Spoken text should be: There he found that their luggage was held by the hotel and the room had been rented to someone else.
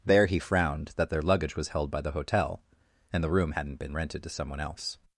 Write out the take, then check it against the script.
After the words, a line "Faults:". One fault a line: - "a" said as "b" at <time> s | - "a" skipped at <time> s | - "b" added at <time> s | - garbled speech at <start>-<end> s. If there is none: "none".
There he frowned that their luggage was held by the hotel and the room hadn't been rented to someone else.
Faults:
- "found" said as "frowned" at 0.4 s
- "had" said as "hadn't" at 3.5 s